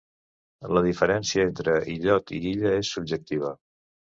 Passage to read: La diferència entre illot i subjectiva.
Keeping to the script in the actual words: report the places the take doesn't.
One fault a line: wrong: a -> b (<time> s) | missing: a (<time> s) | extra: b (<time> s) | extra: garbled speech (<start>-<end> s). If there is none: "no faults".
extra: illa és (2.6 s)